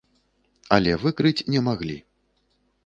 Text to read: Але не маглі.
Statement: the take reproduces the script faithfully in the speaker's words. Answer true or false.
false